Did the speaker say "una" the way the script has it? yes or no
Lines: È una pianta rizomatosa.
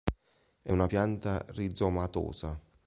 yes